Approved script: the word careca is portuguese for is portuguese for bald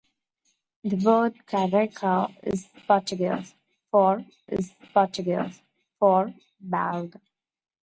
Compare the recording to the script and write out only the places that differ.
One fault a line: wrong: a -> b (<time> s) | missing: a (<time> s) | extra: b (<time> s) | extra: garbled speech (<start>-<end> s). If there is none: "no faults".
no faults